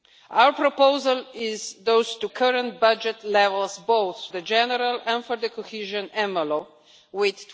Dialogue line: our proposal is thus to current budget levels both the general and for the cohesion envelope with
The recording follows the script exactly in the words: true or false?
true